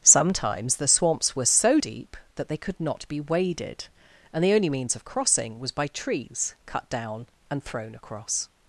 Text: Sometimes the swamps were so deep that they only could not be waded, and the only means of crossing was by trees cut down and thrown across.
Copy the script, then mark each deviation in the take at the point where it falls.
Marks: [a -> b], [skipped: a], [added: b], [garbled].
Sometimes the swamps were so deep that they [skipped: only] could not be waded, and the only means of crossing was by trees cut down and thrown across.